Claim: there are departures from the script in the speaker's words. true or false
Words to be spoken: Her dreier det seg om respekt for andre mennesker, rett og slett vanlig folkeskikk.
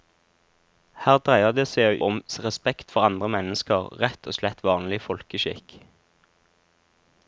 false